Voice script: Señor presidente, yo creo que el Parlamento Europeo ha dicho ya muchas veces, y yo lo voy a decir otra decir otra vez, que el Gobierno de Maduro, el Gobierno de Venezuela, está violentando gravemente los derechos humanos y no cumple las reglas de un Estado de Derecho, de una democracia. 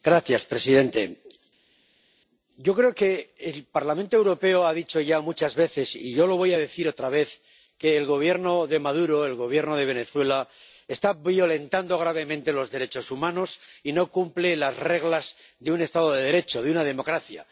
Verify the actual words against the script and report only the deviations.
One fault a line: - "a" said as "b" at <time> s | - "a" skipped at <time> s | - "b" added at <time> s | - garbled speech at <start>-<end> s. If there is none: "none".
- "decir otra" skipped at 7.1 s